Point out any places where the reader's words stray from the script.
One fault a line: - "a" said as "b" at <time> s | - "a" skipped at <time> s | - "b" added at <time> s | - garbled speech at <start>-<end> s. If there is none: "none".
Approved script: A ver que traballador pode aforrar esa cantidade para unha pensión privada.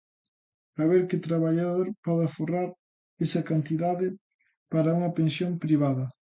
none